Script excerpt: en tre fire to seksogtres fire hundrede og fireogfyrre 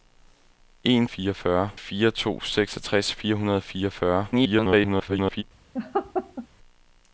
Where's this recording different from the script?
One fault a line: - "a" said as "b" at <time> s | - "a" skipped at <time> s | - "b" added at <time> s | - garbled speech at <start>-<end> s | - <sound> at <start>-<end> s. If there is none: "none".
- "tre" said as "fireogfyrre" at 1.1 s
- garbled speech at 4.3-5.4 s
- laugh at 5.7-6.5 s